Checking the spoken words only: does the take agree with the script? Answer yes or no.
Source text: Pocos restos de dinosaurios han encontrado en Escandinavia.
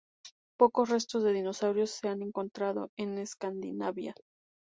no